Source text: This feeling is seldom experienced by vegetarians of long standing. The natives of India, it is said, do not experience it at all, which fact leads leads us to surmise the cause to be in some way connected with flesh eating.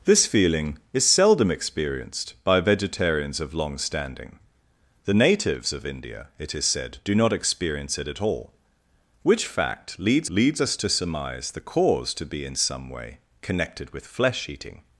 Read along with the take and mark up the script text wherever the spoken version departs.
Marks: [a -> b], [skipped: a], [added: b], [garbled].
This feeling is seldom experienced by vegetarians of long standing. The natives of India, it is said, do not experience it at all, which fact leads leads us to surmise the cause to be in some way connected with flesh eating.